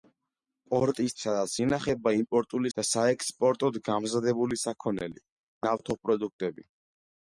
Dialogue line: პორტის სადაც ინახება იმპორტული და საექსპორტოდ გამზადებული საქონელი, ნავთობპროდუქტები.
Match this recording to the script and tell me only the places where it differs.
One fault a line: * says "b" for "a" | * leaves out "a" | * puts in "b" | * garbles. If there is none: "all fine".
all fine